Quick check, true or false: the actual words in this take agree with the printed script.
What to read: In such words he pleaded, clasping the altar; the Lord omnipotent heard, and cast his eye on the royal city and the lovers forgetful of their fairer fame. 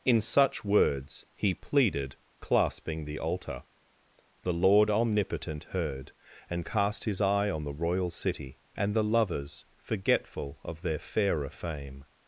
true